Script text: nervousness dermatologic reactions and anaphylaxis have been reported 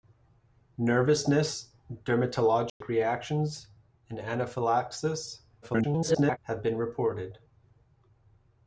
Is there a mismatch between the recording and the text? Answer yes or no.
yes